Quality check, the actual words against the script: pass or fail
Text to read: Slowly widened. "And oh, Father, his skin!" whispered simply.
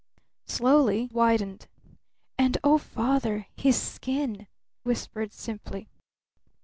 pass